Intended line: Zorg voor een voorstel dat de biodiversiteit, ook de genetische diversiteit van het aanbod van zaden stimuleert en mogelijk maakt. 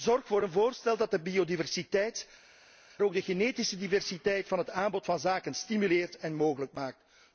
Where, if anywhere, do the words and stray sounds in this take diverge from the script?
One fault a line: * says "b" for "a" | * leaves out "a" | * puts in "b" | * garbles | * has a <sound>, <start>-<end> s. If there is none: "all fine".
all fine